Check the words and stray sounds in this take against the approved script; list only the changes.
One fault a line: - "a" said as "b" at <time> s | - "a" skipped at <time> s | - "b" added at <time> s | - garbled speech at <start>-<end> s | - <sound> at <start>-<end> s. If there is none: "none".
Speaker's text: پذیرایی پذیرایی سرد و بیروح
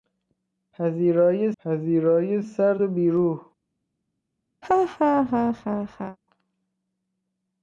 - laugh at 4.6-6.2 s